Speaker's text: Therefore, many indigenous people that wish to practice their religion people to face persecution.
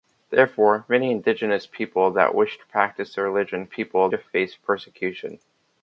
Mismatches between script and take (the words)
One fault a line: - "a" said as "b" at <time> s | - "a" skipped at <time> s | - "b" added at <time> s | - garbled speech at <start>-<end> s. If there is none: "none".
none